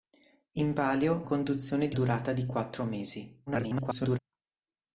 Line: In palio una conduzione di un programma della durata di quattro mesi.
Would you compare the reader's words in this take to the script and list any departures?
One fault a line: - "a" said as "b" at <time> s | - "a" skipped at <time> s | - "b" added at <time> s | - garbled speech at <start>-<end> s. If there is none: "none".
- "una" skipped at 1.3 s
- "un programma della" skipped at 2.0 s
- garbled speech at 3.5-4.2 s